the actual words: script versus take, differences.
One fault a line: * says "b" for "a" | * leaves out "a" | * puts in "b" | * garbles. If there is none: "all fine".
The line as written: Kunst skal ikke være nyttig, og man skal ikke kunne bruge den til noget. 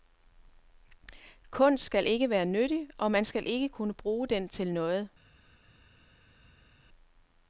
all fine